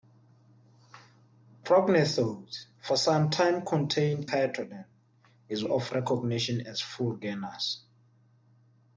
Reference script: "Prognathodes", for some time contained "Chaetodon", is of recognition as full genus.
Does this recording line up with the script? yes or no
yes